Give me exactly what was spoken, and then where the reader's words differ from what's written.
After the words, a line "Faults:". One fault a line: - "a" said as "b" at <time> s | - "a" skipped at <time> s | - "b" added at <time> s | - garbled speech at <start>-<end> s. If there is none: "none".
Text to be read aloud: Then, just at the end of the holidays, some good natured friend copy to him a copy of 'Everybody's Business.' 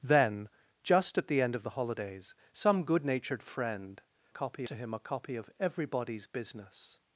Then, just at the end of the holidays, some good natured friend copy to him a copy of 'Everybody's Business.'
Faults:
none